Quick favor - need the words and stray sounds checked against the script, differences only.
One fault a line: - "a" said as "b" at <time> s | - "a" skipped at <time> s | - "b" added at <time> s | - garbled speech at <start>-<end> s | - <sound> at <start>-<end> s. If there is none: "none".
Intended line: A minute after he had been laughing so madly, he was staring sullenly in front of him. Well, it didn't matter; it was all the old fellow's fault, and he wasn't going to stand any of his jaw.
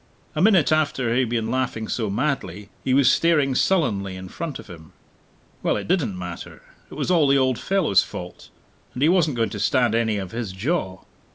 none